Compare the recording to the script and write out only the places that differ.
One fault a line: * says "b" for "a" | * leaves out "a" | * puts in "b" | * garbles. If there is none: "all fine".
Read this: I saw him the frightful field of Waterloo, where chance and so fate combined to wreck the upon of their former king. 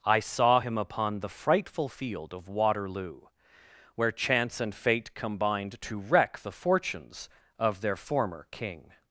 * puts in "upon"
* leaves out "so"
* says "fortunes" for "upon"